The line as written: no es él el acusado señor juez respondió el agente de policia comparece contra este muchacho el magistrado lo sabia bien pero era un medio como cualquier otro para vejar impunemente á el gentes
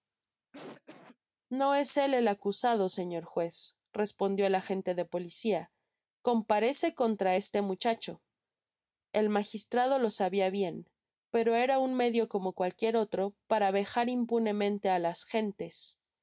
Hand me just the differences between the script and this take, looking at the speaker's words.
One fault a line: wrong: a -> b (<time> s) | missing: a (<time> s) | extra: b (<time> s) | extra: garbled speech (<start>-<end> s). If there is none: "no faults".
wrong: el -> las (15.0 s)